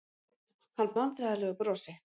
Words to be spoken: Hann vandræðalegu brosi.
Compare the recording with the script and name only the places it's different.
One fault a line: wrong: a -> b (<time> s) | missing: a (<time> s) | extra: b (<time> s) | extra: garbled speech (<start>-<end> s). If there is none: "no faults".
no faults